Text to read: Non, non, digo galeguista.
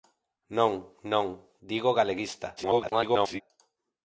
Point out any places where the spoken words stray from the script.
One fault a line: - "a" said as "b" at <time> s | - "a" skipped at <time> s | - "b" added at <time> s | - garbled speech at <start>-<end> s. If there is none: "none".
- garbled speech at 2.6-3.4 s